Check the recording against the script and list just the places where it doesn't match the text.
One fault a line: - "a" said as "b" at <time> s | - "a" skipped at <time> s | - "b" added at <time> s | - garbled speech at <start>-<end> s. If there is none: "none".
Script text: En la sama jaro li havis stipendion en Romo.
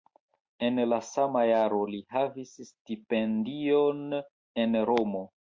none